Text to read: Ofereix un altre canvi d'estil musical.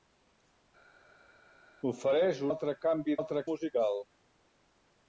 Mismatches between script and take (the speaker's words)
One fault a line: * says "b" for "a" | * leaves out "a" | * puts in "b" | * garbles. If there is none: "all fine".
* leaves out "un"
* says "altre" for "d'estil"